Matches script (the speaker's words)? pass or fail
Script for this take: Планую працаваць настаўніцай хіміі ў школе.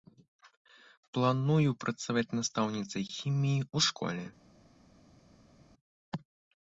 pass